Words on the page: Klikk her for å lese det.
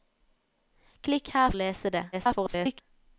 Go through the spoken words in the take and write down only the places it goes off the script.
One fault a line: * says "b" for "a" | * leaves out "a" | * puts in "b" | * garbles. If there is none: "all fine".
* leaves out "for"
* garbles